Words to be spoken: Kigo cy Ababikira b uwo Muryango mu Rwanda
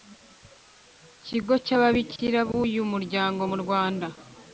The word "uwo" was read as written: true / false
false